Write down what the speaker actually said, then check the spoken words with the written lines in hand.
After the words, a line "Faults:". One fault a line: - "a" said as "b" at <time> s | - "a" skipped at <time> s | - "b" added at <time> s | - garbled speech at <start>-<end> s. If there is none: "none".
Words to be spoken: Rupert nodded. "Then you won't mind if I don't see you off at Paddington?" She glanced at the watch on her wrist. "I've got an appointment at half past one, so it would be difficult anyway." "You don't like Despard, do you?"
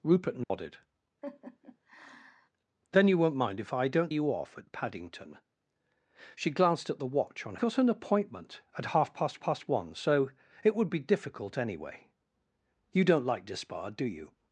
Rupert nodded. "Then you won't mind if I don't you off at Paddington?" She glanced at the watch on got an appointment at half past past one, so it would be difficult anyway." "You don't like Despard, do you?"
Faults:
- "see" skipped at 4.1 s
- "her wrist I've" skipped at 7.6 s
- "past" added at 9.4 s